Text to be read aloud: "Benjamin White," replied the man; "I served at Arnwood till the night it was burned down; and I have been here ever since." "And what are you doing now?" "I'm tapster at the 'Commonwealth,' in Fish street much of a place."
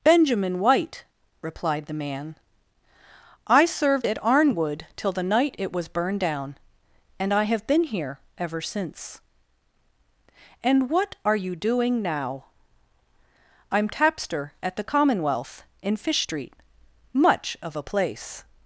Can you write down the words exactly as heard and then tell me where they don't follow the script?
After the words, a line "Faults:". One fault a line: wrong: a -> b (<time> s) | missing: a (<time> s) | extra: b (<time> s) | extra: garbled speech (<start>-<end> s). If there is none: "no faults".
"Benjamin White," replied the man; "I served at Arnwood till the night it was burned down; and I have been here ever since." "And what are you doing now?" "I'm tapster at the 'Commonwealth,' in Fish street much of a place."
Faults:
no faults